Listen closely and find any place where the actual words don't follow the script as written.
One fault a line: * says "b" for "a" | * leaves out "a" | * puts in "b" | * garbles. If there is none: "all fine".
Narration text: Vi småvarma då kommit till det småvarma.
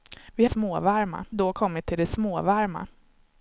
all fine